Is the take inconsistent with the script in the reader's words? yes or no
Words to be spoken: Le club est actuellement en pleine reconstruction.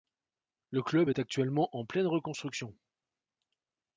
no